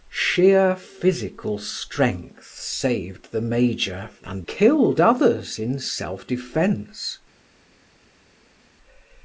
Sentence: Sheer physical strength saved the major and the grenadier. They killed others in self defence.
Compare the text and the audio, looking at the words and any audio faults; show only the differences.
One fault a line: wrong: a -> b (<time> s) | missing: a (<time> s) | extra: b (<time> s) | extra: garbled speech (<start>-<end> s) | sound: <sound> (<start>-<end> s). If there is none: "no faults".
missing: the grenadier They (4.5 s)